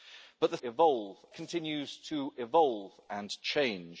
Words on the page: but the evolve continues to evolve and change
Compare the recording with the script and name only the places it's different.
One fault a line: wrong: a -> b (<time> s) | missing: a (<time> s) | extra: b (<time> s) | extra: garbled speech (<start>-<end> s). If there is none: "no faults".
no faults